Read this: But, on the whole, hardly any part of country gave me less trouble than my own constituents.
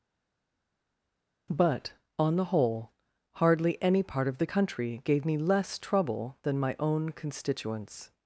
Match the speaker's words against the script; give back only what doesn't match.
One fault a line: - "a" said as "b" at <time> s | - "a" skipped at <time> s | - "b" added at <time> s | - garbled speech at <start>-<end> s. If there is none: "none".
- "the" added at 4.4 s